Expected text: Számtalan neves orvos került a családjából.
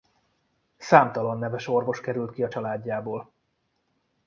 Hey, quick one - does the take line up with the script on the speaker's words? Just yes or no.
no